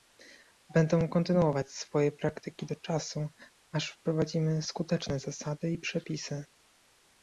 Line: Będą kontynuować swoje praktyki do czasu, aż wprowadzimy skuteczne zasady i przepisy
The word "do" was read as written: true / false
true